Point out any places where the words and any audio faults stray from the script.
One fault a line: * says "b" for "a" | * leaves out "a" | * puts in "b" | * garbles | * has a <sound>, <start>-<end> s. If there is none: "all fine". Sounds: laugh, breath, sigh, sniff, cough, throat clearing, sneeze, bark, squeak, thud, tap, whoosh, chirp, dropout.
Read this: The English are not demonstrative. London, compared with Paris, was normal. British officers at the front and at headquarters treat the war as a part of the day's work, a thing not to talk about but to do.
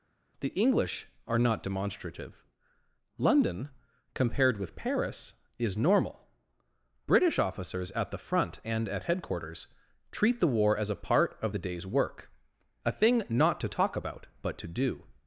* says "is" for "was"